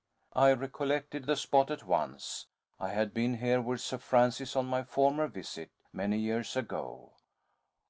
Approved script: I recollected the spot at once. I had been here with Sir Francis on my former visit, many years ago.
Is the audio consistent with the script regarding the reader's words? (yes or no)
yes